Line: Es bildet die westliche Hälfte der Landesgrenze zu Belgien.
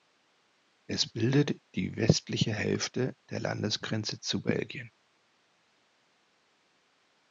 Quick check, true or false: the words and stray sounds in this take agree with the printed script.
true